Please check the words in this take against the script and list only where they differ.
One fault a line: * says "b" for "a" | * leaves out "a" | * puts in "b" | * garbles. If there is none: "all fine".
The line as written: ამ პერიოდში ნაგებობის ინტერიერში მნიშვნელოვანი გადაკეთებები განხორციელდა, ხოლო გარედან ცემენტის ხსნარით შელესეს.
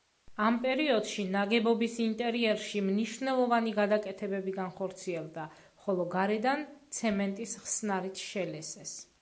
all fine